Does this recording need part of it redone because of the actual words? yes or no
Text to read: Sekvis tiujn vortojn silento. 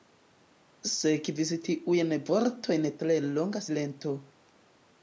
yes